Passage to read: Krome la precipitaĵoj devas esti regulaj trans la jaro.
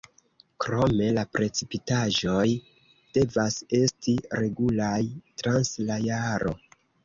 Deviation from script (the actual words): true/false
false